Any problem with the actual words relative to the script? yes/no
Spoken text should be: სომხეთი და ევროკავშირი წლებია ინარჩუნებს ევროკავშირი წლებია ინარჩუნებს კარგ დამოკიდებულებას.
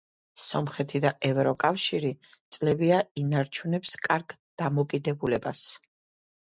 yes